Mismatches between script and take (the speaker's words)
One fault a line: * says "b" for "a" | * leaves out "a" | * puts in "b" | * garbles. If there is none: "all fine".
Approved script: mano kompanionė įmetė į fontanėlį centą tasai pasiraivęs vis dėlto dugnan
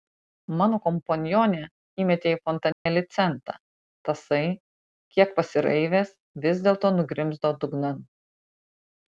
* puts in "kiek"
* puts in "nugrimzdo"